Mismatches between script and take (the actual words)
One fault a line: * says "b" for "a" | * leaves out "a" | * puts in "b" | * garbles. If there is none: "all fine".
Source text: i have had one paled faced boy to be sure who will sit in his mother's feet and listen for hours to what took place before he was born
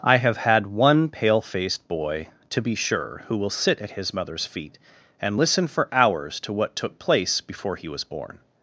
* says "pale" for "paled"
* says "at" for "in"